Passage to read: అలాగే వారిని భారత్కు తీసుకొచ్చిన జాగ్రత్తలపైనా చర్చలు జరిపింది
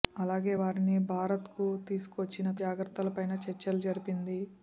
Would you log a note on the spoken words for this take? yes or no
no